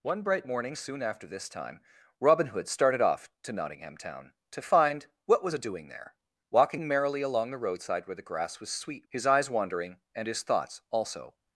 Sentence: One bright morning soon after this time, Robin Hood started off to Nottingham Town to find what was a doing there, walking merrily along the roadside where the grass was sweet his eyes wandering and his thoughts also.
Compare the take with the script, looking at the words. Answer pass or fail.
pass